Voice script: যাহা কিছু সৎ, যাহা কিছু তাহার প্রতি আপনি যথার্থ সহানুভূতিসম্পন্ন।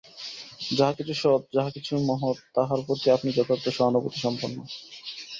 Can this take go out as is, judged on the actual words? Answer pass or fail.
fail